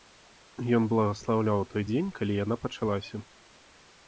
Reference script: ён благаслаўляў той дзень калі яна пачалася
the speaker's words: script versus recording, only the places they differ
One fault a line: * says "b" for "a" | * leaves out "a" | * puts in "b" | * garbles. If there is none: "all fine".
all fine